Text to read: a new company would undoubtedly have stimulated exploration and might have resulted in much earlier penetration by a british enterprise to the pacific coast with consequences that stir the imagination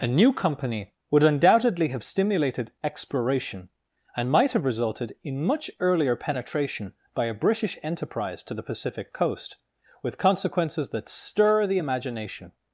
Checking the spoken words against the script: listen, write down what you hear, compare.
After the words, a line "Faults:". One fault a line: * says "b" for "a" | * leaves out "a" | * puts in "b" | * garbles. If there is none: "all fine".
a new company would undoubtedly have stimulated exploration and might have resulted in much earlier penetration by a british enterprise to the pacific coast with consequences that stir the imagination
Faults:
all fine